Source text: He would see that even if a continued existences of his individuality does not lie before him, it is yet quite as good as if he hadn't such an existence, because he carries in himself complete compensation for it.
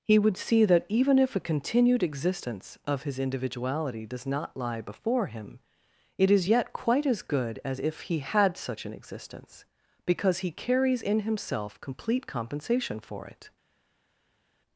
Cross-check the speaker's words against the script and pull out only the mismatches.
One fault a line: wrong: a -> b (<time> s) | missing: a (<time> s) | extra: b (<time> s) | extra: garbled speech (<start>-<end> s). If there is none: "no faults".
wrong: existences -> existence (2.0 s)
wrong: hadn't -> had (8.2 s)